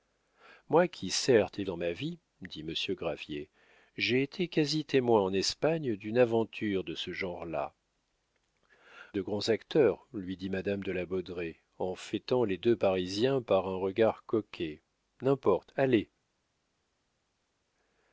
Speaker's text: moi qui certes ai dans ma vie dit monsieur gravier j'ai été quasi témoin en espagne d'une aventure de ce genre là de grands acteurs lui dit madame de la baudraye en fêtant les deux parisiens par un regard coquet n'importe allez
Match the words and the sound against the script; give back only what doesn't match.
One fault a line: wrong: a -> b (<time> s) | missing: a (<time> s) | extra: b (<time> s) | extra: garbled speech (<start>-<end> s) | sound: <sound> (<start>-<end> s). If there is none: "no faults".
no faults